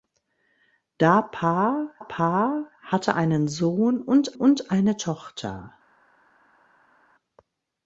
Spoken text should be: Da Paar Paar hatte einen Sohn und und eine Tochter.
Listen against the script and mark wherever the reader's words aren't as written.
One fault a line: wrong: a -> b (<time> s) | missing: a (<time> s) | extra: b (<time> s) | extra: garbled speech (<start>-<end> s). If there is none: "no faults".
no faults